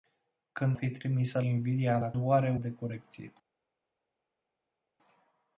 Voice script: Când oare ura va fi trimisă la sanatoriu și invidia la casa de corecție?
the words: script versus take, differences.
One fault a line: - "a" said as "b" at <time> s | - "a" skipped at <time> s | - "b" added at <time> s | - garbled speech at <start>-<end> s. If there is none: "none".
- "oare ura va" skipped at 0.8 s
- "la sanatoriu și" skipped at 1.4 s
- "casa" said as "oare" at 2.2 s